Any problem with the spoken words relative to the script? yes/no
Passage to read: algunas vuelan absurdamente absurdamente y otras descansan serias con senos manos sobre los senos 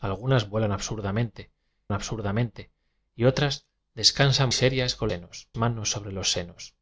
no